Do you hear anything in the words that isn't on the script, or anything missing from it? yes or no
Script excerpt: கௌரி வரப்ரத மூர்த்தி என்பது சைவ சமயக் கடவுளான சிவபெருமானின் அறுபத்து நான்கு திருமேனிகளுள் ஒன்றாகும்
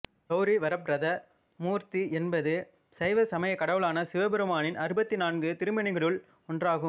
no